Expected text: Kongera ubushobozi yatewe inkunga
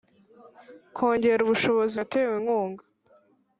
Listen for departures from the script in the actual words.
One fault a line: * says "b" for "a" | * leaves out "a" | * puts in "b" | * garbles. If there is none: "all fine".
all fine